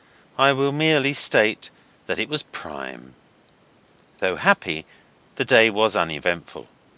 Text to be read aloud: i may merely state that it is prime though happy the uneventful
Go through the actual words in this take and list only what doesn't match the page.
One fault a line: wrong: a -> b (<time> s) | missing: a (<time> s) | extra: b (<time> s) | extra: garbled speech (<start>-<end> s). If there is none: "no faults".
wrong: may -> will (0.5 s)
wrong: is -> was (2.3 s)
extra: day was (5.4 s)